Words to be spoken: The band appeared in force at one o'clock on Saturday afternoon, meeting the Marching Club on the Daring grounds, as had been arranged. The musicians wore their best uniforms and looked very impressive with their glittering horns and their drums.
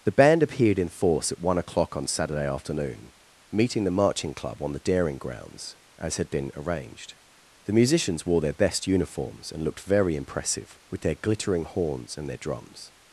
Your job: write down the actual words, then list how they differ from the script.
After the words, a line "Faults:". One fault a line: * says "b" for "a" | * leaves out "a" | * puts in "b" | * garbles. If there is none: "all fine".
The band appeared in force at one o'clock on Saturday afternoon, meeting the Marching Club on the Daring grounds, as had been arranged. The musicians wore their best uniforms and looked very impressive with their glittering horns and their drums.
Faults:
all fine